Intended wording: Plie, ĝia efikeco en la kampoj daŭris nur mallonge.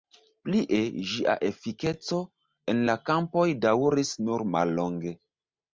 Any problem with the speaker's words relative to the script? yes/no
no